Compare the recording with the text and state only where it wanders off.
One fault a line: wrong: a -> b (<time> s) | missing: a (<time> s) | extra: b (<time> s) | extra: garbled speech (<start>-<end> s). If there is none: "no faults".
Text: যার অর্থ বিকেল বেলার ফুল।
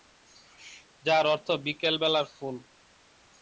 no faults